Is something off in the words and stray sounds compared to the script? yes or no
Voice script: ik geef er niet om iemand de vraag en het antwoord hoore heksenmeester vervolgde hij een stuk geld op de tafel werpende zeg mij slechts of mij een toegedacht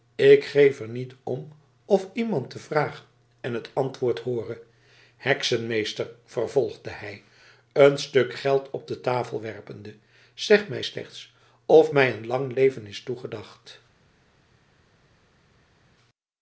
yes